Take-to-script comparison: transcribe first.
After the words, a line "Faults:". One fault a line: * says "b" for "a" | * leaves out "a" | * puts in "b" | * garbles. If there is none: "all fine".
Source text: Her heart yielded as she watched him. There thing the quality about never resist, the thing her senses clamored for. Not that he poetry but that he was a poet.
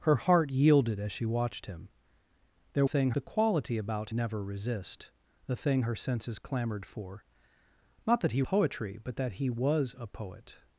Her heart yielded as she watched him. There thing the quality about never resist, the thing her senses clamored for. Not that he poetry but that he was a poet.
Faults:
all fine